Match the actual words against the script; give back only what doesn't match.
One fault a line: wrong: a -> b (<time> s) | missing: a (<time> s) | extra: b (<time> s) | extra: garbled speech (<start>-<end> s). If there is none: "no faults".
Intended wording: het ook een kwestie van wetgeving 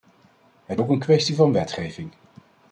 no faults